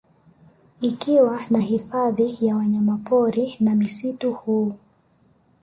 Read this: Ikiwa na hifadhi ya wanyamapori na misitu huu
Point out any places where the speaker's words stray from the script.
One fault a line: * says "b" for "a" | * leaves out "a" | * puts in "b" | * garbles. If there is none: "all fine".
all fine